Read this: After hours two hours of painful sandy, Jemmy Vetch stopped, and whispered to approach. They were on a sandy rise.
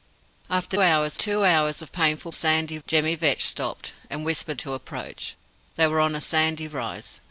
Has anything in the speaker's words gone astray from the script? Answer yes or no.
no